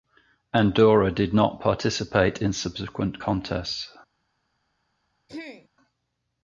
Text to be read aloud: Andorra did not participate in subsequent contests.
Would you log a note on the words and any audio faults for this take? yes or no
yes